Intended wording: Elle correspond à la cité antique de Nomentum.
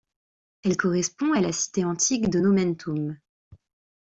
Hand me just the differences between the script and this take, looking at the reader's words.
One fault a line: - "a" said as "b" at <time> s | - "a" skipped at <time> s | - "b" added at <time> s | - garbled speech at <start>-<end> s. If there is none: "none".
none